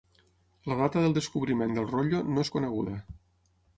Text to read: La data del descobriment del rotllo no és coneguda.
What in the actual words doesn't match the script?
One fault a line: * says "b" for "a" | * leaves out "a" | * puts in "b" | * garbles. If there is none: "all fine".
all fine